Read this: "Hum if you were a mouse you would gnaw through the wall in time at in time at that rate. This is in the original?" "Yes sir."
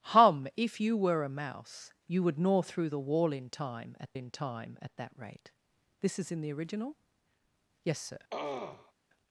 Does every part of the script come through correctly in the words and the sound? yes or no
no